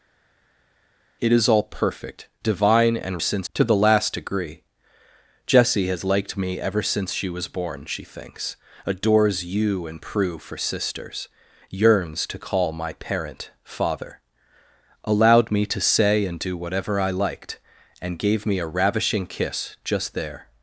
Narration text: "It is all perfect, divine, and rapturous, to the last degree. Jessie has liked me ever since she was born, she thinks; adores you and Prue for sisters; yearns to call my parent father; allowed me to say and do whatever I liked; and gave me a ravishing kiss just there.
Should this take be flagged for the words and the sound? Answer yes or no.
yes